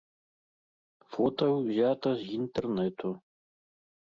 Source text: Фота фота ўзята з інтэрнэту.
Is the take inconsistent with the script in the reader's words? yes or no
yes